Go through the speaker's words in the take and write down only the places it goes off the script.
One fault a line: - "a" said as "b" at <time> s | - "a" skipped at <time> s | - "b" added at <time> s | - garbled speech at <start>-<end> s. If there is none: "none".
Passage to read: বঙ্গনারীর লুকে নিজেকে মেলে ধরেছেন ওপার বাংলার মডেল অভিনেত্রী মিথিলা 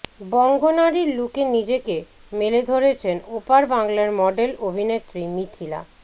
none